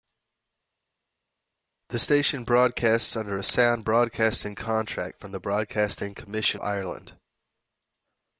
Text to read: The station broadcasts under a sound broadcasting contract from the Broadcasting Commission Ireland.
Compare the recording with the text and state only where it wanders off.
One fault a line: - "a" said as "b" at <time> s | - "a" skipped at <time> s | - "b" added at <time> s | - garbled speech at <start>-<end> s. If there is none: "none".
none